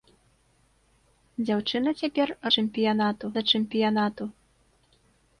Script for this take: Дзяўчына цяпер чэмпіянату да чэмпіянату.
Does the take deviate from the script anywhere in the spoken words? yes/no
no